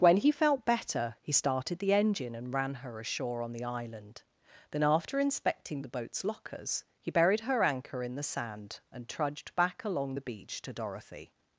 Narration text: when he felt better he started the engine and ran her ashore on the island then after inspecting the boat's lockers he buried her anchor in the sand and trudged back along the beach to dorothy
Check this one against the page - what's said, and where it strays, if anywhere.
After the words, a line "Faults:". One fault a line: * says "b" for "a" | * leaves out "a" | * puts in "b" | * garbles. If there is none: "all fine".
when he felt better he started the engine and ran her ashore on the island then after inspecting the boat's lockers he buried her anchor in the sand and trudged back along the beach to dorothy
Faults:
all fine